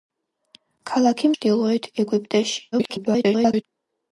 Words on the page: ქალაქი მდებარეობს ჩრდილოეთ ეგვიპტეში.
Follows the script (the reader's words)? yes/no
no